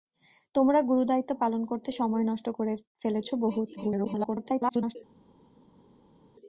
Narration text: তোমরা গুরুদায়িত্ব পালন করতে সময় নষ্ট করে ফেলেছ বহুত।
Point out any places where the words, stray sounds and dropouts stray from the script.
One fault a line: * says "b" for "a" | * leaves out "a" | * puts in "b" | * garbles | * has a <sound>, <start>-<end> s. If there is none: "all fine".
* garbles